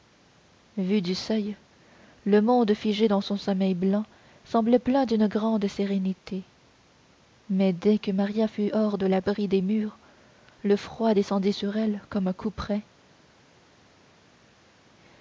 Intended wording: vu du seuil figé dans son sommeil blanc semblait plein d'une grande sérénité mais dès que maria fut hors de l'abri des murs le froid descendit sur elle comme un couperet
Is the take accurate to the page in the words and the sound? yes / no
no